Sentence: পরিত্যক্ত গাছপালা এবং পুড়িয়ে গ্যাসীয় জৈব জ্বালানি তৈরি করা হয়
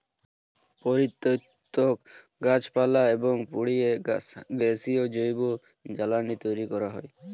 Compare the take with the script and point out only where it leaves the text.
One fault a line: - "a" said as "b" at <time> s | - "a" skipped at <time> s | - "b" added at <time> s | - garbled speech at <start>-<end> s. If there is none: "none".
none